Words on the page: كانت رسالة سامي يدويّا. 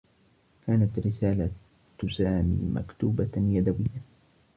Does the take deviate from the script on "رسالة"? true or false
false